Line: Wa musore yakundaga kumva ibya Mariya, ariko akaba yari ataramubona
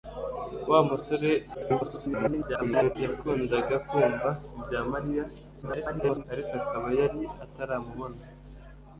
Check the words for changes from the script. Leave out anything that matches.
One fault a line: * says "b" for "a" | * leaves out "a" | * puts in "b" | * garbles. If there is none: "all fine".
* garbles
* garbles